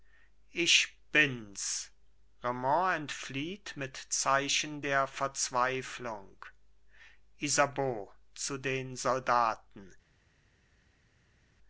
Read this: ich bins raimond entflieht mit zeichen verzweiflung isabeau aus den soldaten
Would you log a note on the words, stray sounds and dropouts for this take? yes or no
yes